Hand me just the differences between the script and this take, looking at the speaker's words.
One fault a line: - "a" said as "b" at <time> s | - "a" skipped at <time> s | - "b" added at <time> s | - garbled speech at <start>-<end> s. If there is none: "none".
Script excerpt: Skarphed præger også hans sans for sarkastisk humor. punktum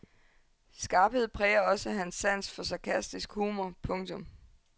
none